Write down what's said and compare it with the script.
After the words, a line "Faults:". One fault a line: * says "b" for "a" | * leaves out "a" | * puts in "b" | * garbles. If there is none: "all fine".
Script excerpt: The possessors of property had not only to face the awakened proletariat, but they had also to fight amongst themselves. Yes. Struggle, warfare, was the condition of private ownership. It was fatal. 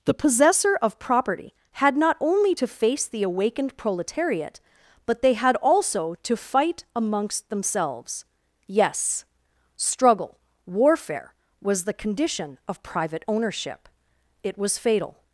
The possessor of property had not only to face the awakened proletariat, but they had also to fight amongst themselves. Yes. Struggle, warfare, was the condition of private ownership. It was fatal.
Faults:
* says "possessor" for "possessors"